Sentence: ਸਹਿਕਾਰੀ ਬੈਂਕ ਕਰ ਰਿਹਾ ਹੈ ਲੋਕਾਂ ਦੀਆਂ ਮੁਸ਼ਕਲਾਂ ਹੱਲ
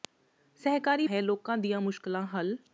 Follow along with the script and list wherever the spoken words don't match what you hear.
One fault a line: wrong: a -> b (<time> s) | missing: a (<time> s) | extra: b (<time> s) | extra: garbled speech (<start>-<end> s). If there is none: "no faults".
missing: ਬੈਂਕ ਕਰ ਰਿਹਾ (1.1 s)